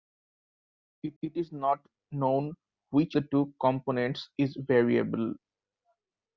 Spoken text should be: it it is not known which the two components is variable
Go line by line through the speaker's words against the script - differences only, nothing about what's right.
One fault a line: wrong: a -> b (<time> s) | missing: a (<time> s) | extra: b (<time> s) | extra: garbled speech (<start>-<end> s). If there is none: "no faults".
no faults